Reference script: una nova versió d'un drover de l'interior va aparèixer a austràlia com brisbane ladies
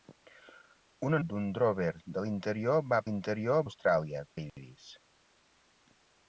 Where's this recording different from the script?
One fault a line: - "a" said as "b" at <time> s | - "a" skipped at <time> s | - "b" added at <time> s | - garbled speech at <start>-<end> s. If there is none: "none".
- "nova versió" skipped at 1.2 s
- "aparèixer" said as "l'interior" at 3.1 s
- "com brisbane" skipped at 4.3 s